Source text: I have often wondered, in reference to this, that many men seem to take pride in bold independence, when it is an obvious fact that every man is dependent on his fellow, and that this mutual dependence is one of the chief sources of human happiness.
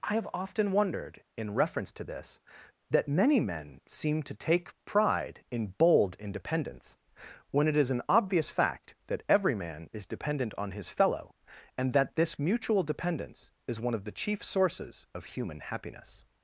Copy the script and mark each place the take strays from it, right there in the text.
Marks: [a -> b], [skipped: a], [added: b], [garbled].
I have often wondered, in reference to this, that many men seem to take pride in bold independence, when it is an obvious fact that every man is dependent on his fellow, and that this mutual dependence is one of the chief sources of human happiness.